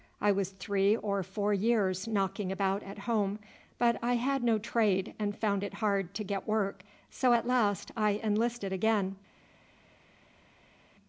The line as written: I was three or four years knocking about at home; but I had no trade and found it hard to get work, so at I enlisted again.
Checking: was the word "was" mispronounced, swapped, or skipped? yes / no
no